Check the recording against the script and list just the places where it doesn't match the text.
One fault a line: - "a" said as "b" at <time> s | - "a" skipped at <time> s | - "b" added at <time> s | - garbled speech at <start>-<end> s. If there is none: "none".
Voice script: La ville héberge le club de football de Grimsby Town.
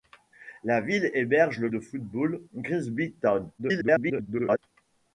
- "club" skipped at 1.7 s
- "de" skipped at 2.4 s
- garbled speech at 3.6-4.6 s